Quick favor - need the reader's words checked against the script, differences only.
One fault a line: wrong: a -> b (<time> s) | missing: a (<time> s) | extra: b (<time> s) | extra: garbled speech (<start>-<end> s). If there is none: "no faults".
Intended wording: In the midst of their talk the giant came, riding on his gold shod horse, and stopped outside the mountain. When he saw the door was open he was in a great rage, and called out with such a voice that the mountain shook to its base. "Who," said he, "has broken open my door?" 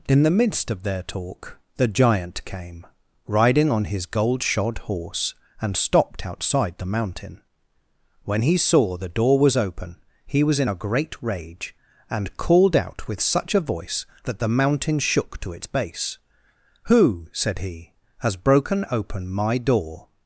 no faults